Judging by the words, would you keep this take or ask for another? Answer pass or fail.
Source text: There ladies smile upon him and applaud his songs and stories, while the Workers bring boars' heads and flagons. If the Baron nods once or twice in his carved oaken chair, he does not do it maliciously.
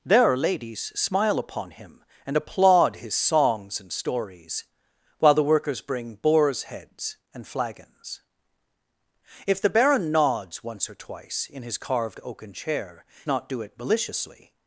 fail